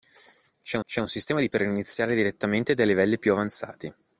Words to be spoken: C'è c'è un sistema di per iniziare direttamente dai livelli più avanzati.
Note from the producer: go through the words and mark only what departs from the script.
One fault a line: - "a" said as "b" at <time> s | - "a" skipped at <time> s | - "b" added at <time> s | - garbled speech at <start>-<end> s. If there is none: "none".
none